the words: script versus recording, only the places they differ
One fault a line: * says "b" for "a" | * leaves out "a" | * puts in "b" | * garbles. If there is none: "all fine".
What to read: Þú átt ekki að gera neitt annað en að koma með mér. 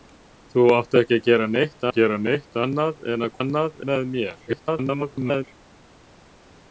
* puts in "að gera neitt"
* says "annað" for "koma"
* garbles